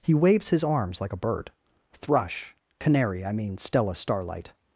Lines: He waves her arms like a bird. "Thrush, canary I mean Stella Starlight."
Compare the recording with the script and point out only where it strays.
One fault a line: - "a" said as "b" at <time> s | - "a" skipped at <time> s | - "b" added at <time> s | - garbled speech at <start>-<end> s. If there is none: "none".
- "her" said as "his" at 0.5 s